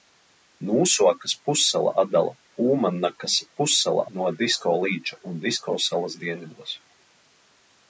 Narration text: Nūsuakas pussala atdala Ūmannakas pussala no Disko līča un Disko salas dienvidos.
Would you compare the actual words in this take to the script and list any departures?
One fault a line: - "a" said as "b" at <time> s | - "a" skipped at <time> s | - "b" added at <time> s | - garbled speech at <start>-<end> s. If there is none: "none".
none